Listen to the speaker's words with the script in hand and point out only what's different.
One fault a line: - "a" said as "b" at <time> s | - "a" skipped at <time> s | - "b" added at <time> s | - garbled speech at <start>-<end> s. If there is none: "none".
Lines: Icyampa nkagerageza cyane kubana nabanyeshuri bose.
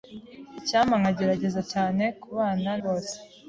- "nabanyeshuri" skipped at 2.7 s